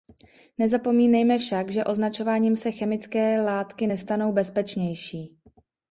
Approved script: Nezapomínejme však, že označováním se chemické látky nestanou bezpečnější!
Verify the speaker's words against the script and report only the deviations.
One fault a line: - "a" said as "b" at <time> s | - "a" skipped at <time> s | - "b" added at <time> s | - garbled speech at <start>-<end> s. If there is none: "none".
none